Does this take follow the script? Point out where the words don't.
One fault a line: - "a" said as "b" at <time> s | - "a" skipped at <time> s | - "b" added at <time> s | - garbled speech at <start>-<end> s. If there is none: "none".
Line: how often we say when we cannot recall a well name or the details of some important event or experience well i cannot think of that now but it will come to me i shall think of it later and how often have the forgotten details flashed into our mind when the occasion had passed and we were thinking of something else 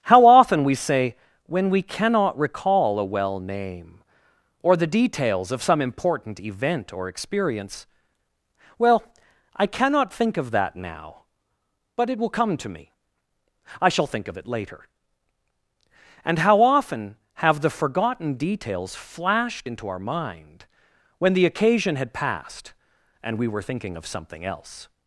none